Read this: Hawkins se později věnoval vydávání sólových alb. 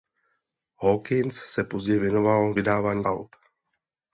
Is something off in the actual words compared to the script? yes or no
yes